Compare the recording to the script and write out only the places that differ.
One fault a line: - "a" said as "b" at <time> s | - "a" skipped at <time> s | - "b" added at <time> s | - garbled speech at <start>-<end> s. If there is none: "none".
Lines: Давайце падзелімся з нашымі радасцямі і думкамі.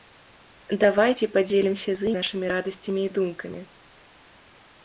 none